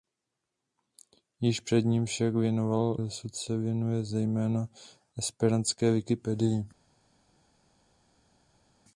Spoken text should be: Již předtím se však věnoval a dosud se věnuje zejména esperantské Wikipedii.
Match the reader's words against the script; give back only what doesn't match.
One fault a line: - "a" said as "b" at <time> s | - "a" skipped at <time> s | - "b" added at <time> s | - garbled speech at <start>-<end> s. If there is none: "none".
- "se" skipped at 2.1 s
- "a" skipped at 3.0 s